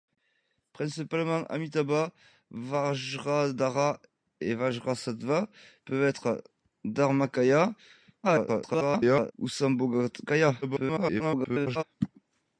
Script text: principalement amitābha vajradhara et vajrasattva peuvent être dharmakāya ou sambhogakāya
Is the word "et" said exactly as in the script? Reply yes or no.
yes